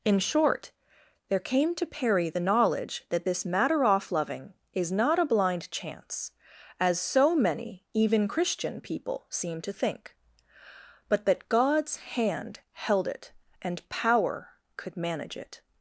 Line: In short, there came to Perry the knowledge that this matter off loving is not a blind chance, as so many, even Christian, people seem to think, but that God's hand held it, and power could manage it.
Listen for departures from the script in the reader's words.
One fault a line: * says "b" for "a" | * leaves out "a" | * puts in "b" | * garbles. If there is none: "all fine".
all fine